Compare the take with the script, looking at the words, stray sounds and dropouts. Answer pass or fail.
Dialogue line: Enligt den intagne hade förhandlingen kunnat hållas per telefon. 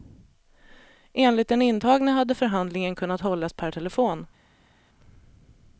pass